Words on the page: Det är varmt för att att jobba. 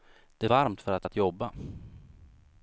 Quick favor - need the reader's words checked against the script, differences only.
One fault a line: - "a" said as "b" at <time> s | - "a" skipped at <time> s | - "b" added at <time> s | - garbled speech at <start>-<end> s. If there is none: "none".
none